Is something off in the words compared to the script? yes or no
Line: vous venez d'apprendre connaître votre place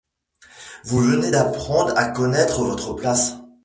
yes